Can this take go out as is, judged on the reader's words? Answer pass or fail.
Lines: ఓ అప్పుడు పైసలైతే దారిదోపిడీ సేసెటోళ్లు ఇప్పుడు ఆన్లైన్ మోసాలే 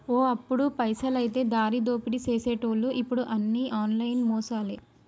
fail